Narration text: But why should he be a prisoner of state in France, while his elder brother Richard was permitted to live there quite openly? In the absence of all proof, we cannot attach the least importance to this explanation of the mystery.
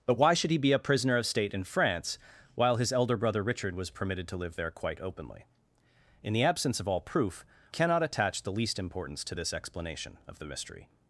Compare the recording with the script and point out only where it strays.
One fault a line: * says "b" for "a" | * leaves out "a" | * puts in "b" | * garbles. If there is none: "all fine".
* leaves out "we"